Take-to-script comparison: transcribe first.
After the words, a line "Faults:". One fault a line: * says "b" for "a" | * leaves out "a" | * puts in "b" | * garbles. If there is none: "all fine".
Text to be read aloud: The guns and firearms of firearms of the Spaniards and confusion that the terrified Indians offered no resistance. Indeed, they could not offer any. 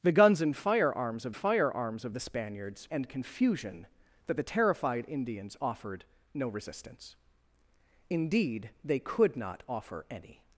The guns and firearms of firearms of the Spaniards and confusion that the terrified Indians offered no resistance. Indeed, they could not offer any.
Faults:
all fine